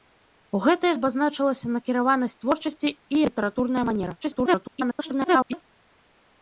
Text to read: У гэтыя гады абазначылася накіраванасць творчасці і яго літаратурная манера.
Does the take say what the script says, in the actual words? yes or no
no